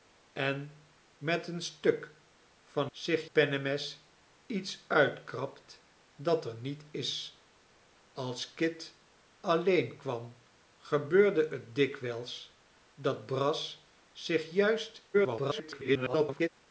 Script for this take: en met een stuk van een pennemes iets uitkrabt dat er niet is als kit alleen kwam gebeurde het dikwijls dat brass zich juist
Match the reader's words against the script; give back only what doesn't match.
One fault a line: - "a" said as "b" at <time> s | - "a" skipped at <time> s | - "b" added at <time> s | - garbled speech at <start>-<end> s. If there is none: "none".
- "een" said as "zich" at 2.9 s
- garbled speech at 15.1-16.5 s